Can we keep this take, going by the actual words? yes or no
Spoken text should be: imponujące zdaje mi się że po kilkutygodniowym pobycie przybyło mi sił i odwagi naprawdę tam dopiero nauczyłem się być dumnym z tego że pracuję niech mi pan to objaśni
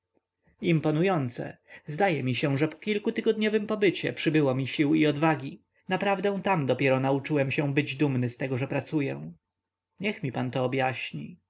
yes